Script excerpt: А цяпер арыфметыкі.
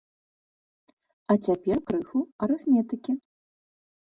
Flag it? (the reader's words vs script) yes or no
yes